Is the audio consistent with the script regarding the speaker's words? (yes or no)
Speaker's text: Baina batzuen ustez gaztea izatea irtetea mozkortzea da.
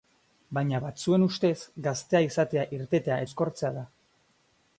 yes